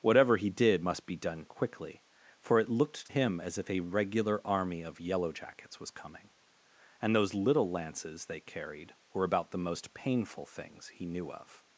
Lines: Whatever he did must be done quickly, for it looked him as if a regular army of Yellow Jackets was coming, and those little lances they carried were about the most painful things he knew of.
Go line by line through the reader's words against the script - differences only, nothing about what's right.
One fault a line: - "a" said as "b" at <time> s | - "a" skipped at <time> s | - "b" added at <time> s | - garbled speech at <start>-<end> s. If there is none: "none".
none